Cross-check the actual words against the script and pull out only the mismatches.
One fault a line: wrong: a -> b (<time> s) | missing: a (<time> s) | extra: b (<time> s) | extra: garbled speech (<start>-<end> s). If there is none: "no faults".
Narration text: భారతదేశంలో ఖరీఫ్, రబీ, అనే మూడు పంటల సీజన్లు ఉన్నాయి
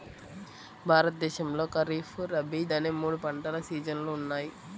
no faults